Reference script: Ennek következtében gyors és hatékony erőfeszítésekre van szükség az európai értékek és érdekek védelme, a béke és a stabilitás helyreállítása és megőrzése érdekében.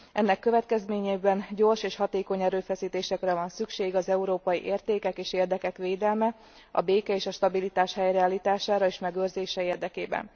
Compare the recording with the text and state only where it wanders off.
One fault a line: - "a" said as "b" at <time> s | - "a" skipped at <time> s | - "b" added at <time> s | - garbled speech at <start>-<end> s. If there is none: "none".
none